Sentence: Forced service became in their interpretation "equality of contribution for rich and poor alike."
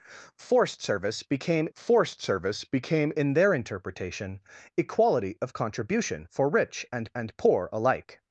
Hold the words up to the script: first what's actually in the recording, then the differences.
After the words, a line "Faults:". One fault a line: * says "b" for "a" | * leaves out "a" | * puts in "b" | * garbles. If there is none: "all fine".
Forced service became forced service became in their interpretation "equality of contribution for rich and and poor alike."
Faults:
* puts in "forced service became"
* puts in "and"